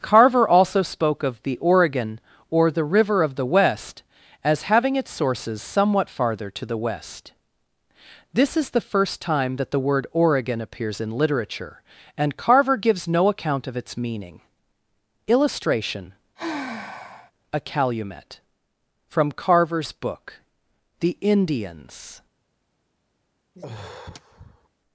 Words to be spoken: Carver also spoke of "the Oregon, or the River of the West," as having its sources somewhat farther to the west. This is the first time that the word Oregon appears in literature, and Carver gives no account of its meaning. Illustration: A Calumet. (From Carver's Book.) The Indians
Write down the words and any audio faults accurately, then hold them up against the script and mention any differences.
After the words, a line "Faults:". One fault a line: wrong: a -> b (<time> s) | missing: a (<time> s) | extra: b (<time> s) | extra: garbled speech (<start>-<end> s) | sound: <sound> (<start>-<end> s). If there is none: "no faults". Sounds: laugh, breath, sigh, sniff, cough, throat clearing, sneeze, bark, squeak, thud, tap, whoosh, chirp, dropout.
Carver also spoke of "the Oregon, or the River of the West," as having its sources somewhat farther to the west. This is the first time that the word Oregon appears in literature, and Carver gives no account of its meaning. Illustration: A Calumet. (From Carver's Book.) The Indians
Faults:
sound: sigh (16.4-17.3 s)
sound: sigh (23.5-24.7 s)